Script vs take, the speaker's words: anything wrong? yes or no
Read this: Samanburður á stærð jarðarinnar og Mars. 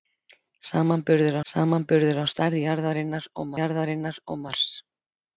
yes